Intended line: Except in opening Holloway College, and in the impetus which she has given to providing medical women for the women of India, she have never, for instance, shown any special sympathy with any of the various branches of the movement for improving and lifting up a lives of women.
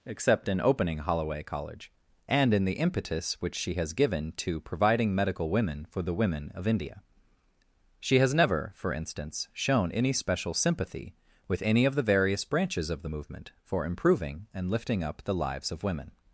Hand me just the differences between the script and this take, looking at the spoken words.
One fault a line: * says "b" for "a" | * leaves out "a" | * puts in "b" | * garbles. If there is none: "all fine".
* says "has" for "have"
* says "the" for "a"